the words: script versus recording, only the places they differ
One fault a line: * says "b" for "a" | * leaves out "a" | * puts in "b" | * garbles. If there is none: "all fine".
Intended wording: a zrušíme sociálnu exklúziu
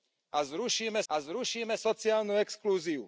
* puts in "a zrušíme"